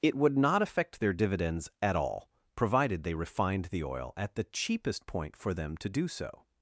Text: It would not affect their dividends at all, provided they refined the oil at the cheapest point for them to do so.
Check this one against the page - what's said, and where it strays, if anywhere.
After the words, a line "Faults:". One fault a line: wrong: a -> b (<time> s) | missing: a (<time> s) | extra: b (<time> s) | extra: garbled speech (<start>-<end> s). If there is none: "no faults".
It would not affect their dividends at all, provided they refined the oil at the cheapest point for them to do so.
Faults:
no faults